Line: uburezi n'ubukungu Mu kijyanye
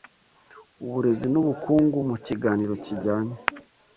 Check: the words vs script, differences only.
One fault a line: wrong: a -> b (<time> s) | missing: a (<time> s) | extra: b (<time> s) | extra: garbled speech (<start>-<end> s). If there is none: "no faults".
extra: kiganiro (2.2 s)